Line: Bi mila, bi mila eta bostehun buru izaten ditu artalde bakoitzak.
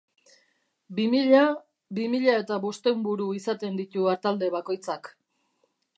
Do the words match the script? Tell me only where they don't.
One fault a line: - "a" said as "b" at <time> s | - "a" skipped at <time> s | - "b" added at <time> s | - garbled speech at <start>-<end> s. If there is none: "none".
none